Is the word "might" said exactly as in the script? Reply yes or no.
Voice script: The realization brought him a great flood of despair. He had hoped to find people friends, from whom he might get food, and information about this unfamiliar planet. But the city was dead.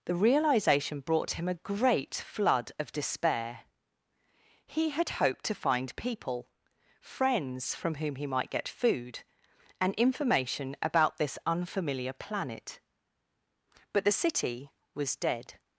yes